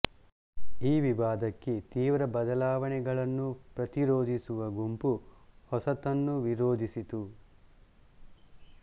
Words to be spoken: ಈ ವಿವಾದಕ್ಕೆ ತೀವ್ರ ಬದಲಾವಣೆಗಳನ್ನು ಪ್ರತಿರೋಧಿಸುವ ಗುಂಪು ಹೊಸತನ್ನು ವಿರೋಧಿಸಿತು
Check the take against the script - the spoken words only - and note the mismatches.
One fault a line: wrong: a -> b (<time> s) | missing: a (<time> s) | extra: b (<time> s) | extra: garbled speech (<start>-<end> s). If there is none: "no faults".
no faults